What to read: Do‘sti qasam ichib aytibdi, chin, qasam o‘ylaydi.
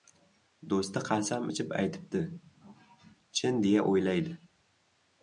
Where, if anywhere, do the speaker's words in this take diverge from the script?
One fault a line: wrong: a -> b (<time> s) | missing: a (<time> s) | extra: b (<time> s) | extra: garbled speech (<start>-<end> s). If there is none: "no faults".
wrong: qasam -> deya (3.7 s)